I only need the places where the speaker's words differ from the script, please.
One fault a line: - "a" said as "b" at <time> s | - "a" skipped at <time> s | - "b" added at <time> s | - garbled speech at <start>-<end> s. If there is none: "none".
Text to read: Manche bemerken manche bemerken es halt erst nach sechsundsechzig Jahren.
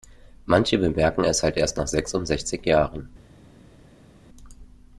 - "manche bemerken" skipped at 1.2 s